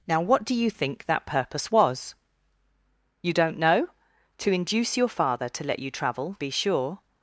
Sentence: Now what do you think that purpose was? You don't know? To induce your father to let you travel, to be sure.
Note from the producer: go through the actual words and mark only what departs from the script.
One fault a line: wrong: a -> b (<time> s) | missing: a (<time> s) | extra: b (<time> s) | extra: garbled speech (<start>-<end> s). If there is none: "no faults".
missing: to (6.4 s)